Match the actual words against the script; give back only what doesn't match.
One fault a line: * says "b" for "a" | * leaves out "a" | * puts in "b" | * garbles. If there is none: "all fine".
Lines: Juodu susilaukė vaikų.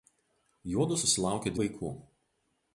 all fine